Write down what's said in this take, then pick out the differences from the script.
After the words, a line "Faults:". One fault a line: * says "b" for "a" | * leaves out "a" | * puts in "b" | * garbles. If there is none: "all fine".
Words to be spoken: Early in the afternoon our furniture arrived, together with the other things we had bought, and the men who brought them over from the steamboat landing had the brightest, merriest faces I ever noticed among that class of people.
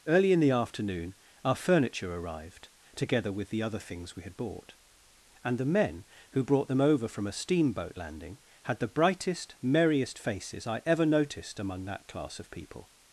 Early in the afternoon our furniture arrived, together with the other things we had bought, and the men who brought them over from a steamboat landing had the brightest, merriest faces I ever noticed among that class of people.
Faults:
* says "a" for "the"